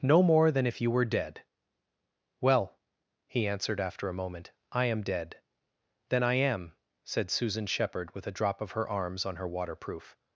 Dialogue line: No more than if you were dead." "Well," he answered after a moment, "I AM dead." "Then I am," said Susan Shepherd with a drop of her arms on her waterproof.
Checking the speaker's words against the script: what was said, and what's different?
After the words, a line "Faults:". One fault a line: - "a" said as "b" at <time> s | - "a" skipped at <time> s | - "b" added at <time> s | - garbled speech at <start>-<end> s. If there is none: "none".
No more than if you were dead." "Well," he answered after a moment, "I AM dead." "Then I am," said Susan Shepherd with a drop of her arms on her waterproof.
Faults:
none